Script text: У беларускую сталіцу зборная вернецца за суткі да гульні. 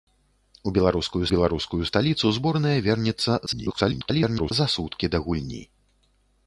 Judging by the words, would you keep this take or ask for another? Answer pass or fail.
fail